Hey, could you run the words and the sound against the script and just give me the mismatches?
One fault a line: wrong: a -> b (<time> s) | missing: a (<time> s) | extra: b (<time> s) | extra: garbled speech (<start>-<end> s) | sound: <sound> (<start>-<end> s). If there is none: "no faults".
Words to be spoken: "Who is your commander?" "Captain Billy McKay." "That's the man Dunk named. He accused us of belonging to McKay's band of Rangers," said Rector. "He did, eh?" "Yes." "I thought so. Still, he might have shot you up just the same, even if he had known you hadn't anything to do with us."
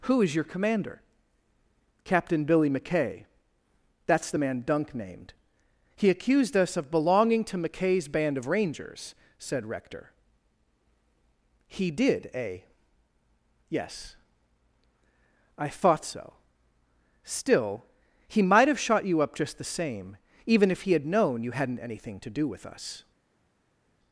no faults